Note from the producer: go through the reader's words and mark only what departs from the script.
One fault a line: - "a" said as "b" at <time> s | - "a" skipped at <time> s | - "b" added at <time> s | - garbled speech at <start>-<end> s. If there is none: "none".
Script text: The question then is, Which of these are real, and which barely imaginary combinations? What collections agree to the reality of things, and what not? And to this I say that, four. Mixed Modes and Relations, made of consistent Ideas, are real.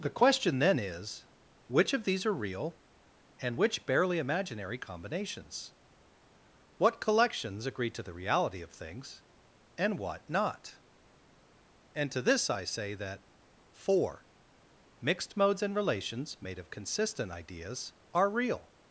none